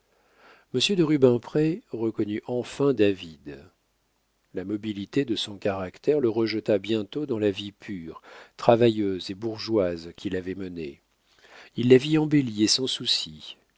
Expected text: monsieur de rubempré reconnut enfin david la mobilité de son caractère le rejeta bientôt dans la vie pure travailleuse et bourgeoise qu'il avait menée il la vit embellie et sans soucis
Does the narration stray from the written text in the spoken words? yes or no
no